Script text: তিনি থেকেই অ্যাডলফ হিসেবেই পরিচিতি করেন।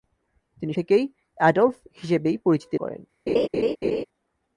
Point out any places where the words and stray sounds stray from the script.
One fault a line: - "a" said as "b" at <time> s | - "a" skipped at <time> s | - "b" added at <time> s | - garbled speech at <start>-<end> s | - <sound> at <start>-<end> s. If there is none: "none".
- laugh at 3.3-4.0 s